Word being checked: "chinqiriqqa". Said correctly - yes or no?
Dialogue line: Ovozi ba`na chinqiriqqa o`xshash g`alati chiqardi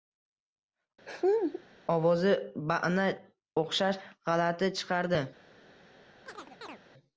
no